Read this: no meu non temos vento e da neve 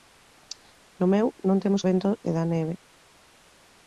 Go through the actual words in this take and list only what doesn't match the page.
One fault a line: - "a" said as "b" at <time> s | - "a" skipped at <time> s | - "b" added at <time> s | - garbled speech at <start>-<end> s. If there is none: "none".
none